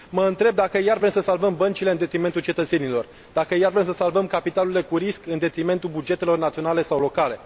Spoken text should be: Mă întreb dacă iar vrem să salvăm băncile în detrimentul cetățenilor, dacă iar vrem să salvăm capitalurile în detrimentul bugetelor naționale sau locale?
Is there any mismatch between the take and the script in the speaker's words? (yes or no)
yes